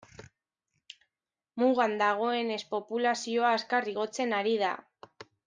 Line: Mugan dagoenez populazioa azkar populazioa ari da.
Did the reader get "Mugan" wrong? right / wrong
right